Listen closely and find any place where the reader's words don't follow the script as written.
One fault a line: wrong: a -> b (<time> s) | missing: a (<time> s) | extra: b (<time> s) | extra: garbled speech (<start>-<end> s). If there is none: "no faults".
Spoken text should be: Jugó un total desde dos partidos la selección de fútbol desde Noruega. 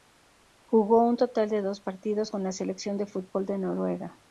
wrong: desde -> de (1.5 s)
extra: con (2.3 s)
wrong: desde -> de (3.5 s)